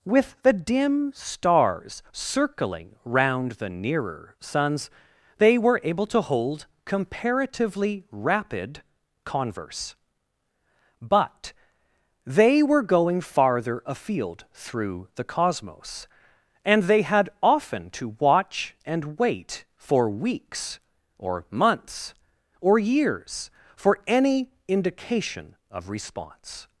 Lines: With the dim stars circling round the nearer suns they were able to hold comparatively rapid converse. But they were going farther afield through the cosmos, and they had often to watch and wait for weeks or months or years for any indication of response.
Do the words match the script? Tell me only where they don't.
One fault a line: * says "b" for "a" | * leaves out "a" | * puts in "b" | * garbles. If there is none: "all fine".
all fine